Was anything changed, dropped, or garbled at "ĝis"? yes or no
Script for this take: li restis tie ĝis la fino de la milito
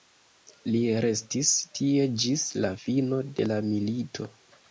no